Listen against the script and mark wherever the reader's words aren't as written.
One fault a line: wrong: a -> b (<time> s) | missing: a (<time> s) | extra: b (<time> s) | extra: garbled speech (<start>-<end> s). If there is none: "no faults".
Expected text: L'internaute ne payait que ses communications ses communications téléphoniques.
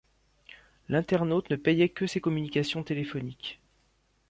missing: ses communications (2.8 s)